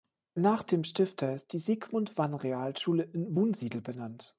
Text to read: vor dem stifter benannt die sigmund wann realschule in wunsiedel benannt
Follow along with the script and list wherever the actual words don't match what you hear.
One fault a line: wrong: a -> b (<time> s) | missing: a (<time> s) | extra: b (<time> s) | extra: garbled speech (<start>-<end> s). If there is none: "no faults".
wrong: vor -> nach (0.3 s)
wrong: benannt -> ist (1.3 s)